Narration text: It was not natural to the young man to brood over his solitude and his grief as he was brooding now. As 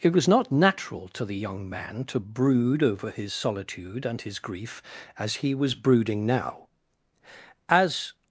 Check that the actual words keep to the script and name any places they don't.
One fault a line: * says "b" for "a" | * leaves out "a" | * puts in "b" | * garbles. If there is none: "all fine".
all fine